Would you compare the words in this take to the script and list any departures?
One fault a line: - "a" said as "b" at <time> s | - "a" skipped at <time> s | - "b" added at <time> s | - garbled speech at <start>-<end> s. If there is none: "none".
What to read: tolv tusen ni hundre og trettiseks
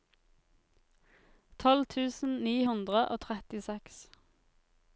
none